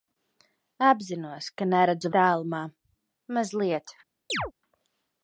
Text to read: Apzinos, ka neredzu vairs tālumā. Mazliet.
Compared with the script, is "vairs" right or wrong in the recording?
wrong